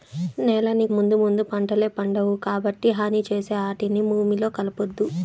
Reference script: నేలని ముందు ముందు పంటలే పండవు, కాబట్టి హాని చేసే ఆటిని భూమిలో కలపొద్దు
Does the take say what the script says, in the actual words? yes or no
yes